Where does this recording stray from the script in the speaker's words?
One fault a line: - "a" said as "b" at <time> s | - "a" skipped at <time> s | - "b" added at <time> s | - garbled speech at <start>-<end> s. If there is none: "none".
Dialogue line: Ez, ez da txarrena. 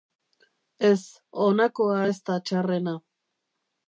- "honakoa" added at 1.4 s